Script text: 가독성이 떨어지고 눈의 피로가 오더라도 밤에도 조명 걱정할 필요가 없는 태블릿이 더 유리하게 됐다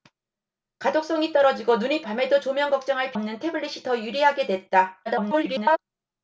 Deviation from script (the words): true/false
true